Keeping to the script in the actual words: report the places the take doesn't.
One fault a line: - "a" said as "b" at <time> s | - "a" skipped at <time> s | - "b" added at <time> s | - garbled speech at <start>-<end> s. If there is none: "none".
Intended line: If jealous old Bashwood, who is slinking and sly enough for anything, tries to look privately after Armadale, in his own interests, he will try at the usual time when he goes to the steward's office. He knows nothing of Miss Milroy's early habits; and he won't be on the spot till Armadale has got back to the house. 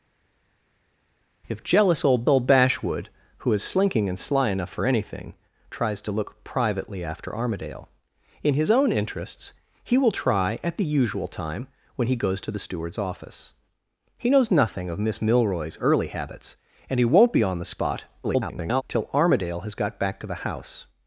- "old" added at 2.3 s
- garbled speech at 18.2-18.8 s